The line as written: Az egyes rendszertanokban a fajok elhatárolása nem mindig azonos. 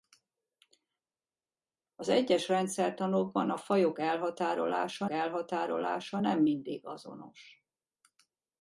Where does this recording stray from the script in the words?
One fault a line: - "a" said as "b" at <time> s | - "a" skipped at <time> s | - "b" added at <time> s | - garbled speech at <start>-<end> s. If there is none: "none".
- "elhatárolása" added at 5.1 s